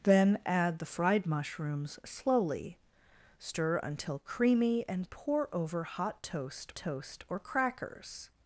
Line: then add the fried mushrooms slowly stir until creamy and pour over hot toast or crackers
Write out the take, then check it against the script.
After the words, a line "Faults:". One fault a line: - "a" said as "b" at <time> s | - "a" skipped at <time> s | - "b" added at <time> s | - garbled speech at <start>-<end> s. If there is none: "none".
then add the fried mushrooms slowly stir until creamy and pour over hot toast toast or crackers
Faults:
- "toast" added at 6.8 s